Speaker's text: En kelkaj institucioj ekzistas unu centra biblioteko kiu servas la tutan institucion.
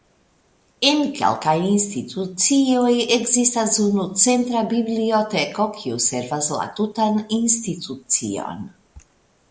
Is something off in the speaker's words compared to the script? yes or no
no